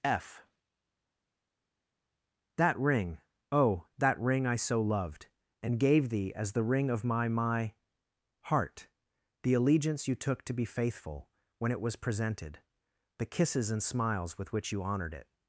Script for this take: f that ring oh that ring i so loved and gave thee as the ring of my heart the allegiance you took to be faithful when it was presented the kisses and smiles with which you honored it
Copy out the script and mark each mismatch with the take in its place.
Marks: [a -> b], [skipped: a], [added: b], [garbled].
f that ring oh that ring i so loved and gave thee as the ring of my [added: my] heart the allegiance you took to be faithful when it was presented the kisses and smiles with which you honored it